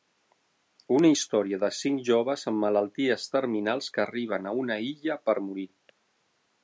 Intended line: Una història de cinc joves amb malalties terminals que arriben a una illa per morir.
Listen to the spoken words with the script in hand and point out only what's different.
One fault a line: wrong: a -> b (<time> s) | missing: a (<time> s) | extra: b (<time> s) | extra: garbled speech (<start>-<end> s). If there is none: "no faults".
no faults